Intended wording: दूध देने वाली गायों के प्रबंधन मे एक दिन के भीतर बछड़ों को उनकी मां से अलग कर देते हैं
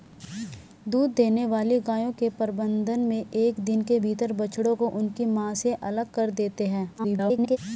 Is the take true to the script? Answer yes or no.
no